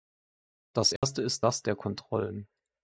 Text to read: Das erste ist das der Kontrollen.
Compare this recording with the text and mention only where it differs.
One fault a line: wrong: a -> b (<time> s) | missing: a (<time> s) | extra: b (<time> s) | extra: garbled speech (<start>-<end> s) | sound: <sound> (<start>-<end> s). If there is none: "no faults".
sound: dropout (1.0-1.0 s)